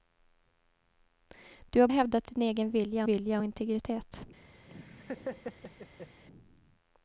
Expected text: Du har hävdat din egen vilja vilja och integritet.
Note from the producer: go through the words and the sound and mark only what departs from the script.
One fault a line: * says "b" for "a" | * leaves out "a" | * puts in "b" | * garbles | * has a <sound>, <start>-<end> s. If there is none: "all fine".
* has a laugh, 4.7-6.2 s